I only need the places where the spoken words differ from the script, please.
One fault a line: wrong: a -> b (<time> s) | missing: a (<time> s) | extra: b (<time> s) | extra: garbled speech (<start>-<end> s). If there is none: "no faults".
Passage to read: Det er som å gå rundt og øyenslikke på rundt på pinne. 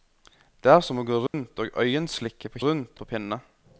no faults